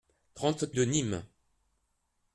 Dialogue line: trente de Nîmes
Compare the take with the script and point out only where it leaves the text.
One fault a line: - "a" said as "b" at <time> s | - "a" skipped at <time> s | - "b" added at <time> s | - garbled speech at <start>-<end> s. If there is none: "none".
none